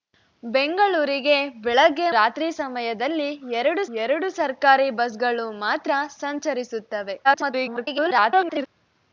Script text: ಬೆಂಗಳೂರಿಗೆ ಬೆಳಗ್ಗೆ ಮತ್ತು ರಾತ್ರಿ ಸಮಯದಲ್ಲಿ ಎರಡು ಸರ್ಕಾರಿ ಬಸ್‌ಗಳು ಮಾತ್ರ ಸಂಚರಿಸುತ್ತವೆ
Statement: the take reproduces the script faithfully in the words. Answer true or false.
false